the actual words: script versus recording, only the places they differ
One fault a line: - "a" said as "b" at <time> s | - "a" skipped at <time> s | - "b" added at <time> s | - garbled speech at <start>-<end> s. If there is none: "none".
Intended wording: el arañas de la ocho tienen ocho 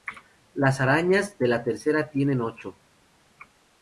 - "el" said as "las" at 0.6 s
- "ocho" said as "tercera" at 1.6 s